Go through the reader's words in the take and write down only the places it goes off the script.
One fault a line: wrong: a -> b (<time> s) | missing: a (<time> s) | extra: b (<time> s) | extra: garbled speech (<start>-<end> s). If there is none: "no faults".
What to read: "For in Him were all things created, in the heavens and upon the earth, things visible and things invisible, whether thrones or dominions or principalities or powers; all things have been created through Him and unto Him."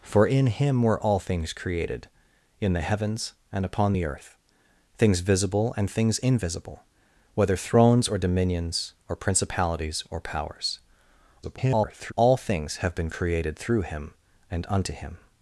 extra: garbled speech (11.4-12.1 s)